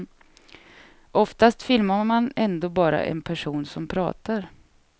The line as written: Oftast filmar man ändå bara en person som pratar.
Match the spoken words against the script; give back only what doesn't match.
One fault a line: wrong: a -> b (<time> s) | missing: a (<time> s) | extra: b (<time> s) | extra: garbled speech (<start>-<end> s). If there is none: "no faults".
no faults